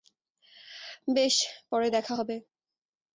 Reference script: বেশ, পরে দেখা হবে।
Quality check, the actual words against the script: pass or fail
pass